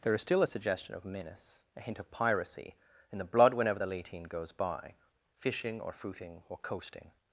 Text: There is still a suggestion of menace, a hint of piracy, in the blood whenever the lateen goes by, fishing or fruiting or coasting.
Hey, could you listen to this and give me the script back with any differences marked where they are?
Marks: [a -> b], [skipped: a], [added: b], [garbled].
There is still a suggestion of menace, a hint of piracy, in the blood whenever the lateen goes by, fishing or fruiting or coasting.